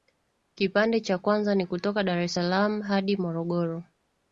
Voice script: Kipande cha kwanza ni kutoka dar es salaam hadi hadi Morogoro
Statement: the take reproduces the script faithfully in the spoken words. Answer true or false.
false